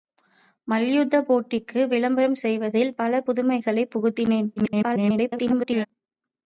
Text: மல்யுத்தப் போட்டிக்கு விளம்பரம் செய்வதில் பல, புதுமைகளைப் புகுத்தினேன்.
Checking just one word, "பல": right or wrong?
right